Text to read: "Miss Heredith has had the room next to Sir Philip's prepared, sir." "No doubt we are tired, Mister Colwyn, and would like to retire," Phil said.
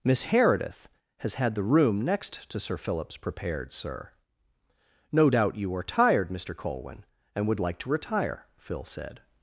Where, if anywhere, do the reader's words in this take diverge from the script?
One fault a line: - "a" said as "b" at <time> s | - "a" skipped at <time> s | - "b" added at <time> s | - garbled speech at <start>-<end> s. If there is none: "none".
- "we" said as "you" at 5.6 s